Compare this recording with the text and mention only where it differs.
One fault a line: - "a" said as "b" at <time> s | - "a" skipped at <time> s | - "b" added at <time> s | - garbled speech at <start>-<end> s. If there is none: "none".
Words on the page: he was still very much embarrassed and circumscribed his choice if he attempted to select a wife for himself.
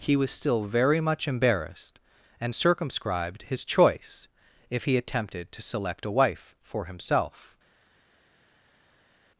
none